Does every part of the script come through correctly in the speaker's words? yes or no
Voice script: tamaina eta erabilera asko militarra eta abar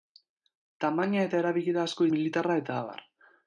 yes